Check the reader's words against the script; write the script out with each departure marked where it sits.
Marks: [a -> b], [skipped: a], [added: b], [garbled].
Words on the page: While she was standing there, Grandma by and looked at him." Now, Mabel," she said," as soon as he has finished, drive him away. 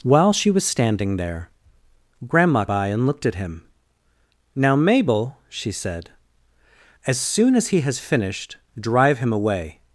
While she was standing there, Grandma by and looked at him." Now, Mabel," she said," as soon as he has finished, drive him away.